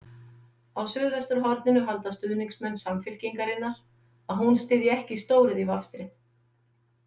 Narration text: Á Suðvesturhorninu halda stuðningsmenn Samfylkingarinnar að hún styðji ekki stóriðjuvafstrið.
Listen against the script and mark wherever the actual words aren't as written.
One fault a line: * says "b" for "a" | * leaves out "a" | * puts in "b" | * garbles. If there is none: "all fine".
all fine